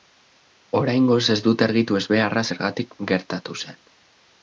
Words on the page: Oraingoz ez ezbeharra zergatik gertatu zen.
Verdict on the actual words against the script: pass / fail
fail